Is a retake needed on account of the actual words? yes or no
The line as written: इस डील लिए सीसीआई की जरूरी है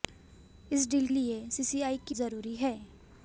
no